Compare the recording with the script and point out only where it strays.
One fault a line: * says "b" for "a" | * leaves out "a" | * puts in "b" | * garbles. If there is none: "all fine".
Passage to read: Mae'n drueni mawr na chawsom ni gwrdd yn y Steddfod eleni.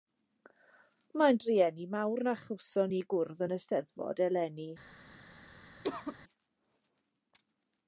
all fine